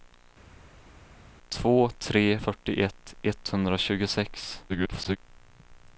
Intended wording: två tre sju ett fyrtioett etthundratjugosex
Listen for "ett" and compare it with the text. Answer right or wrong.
wrong